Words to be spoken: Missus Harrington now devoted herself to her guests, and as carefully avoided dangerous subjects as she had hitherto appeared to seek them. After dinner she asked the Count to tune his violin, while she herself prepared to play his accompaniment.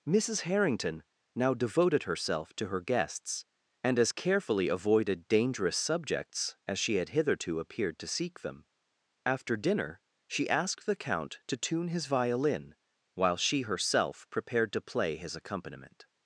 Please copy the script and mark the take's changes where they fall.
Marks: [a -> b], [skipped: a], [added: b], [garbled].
Missus Harrington now devoted herself to her guests, and as carefully avoided dangerous subjects as she had hitherto appeared to seek them. After dinner she asked the Count to tune his violin, while she herself prepared to play his accompaniment.